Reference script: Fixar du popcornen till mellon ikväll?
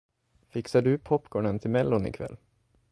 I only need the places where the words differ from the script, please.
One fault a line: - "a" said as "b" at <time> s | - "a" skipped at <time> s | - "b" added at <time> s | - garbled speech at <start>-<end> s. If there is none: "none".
none